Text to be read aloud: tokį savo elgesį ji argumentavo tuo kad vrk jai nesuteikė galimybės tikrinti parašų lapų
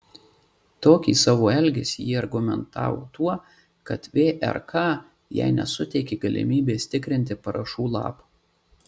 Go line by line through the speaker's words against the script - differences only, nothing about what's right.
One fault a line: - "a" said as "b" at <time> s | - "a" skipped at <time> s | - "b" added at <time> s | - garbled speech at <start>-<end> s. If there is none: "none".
none